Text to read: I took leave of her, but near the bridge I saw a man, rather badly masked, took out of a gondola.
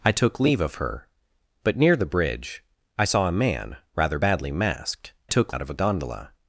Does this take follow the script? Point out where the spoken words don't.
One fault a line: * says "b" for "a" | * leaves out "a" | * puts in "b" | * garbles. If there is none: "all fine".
all fine